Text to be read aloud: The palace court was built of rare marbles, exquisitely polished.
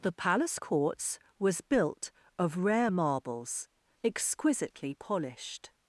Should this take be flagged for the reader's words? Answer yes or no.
yes